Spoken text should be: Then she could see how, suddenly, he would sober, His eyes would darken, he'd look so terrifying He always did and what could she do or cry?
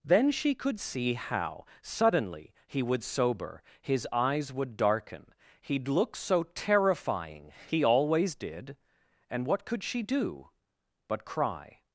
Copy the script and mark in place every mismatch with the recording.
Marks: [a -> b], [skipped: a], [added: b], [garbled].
Then she could see how, suddenly, he would sober, His eyes would darken, he'd look so terrifying He always did and what could she do [or -> but] cry?